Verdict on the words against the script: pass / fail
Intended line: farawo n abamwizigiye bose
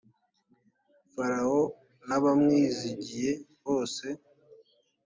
pass